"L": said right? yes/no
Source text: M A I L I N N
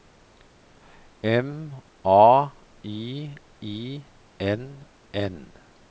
no